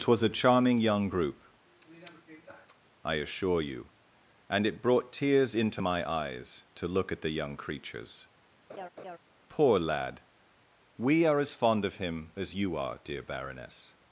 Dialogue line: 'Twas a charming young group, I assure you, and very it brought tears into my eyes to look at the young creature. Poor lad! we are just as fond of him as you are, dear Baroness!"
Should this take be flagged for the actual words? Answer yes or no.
yes